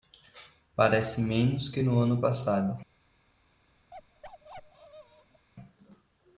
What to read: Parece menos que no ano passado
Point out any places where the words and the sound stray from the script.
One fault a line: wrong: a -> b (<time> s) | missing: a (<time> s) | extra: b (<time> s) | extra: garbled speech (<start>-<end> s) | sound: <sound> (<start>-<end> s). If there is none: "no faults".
sound: bark (3.9-5.5 s)